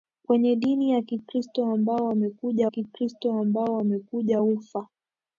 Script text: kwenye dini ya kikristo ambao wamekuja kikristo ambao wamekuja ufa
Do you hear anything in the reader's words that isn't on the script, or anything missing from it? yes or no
no